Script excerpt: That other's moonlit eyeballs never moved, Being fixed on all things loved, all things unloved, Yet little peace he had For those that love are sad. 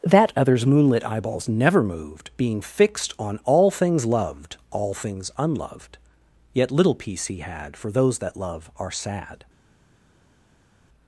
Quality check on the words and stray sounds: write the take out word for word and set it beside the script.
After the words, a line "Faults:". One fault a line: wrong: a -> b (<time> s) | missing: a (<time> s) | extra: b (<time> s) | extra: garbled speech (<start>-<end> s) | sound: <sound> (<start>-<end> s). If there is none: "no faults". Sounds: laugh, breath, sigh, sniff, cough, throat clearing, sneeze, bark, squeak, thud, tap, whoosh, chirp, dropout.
That other's moonlit eyeballs never moved, Being fixed on all things loved, all things unloved, Yet little peace he had For those that love are sad.
Faults:
no faults